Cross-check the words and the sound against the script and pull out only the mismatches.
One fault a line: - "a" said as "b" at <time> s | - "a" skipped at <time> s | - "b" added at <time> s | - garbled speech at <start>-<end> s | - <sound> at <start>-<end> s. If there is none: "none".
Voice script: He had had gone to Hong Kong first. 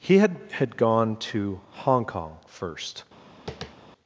- tap at 3.5-3.8 s